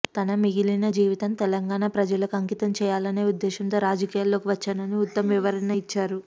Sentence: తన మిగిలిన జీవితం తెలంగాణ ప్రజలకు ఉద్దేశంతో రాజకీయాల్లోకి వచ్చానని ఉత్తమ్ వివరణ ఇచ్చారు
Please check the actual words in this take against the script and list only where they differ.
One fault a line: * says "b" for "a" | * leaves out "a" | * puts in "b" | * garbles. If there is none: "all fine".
* puts in "అంకితం చేయాలనే"